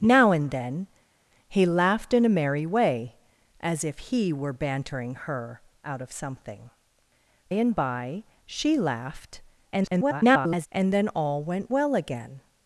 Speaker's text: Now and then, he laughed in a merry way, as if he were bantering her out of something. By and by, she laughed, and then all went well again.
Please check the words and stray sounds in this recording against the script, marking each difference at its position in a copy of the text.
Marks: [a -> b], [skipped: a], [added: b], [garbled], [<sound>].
Now and then, he laughed in a merry way, as if he were bantering her out of something. [skipped: By] and by, she laughed, [garbled] and then all went well again.